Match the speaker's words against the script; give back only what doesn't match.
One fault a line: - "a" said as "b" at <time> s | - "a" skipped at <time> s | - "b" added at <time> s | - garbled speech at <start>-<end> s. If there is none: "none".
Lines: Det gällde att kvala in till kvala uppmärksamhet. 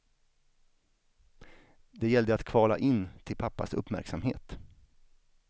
- "kvala" said as "pappas" at 3.4 s